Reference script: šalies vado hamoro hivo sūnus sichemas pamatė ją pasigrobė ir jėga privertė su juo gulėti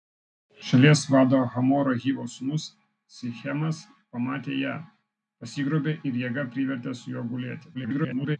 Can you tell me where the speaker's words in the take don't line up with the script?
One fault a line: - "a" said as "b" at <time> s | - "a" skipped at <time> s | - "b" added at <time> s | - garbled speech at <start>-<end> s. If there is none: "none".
- garbled speech at 7.7-8.4 s